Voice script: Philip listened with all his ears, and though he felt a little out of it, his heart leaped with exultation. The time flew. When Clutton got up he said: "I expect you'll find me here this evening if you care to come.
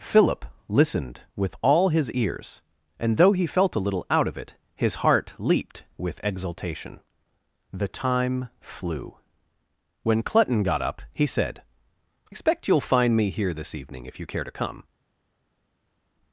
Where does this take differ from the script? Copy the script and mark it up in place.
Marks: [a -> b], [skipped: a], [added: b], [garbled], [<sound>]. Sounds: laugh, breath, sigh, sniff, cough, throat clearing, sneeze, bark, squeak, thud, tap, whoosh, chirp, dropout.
Philip listened with all his ears, and though he felt a little out of it, his heart leaped with exultation. The time flew. When Clutton got up he said: [skipped: "I] expect you'll find me here this evening if you care to come.